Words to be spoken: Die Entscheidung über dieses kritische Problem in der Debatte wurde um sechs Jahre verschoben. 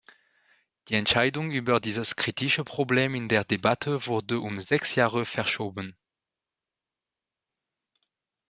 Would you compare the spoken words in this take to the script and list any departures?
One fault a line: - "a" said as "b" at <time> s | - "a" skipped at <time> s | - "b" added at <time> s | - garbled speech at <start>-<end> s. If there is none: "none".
none